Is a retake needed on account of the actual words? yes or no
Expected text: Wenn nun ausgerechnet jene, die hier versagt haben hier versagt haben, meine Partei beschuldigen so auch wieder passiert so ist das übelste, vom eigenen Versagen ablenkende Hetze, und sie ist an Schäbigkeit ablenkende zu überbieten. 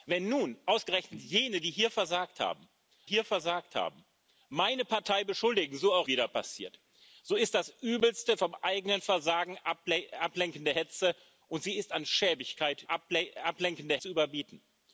no